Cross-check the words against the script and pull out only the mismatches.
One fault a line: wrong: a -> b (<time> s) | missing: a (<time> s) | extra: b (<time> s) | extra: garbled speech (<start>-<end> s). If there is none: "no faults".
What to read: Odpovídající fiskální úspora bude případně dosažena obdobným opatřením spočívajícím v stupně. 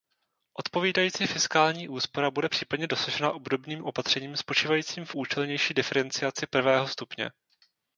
extra: účelnější diferenciaci prvého (5.1 s)